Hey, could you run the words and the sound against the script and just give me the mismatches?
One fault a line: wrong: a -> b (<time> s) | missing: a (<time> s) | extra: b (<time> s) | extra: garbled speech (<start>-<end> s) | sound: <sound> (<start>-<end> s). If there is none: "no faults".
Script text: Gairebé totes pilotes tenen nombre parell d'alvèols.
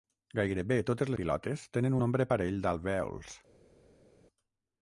no faults